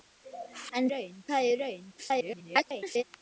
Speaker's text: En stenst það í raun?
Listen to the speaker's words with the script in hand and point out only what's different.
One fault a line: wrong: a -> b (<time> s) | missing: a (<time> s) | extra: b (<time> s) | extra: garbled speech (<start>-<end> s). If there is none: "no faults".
wrong: stenst -> raun (0.9 s)
extra: garbled speech (2.0-3.0 s)